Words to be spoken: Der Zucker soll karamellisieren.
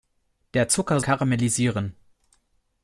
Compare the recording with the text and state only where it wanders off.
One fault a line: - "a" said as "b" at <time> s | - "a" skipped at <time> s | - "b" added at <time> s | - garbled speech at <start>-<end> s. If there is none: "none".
- "soll" skipped at 1.0 s